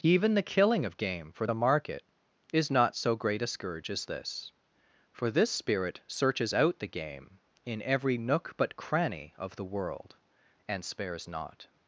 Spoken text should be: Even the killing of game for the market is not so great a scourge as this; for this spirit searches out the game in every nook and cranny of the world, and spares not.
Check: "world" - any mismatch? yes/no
no